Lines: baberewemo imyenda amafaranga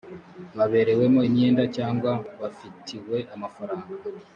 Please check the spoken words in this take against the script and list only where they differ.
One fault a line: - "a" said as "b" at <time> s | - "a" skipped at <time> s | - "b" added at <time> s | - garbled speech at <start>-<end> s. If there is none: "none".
- "cyangwa bafitiwe" added at 1.8 s